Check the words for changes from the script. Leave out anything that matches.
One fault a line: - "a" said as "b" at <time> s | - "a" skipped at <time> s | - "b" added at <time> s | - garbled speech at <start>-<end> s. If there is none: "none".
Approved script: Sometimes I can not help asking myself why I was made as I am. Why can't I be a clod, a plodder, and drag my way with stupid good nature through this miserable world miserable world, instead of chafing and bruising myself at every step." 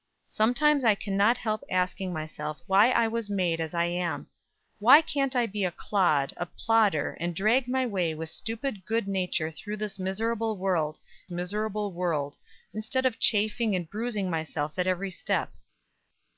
none